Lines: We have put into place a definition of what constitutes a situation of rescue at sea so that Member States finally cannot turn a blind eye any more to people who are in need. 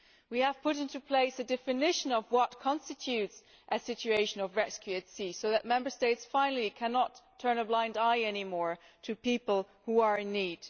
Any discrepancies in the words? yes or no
no